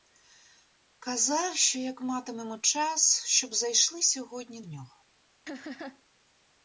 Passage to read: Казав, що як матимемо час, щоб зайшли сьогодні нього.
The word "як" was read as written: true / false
true